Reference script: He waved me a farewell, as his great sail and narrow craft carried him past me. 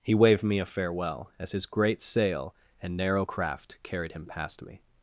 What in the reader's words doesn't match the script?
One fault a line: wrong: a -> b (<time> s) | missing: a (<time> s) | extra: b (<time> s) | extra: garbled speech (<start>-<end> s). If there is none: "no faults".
no faults